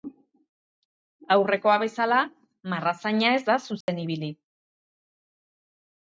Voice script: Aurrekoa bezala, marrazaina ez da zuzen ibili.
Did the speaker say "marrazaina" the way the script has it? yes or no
yes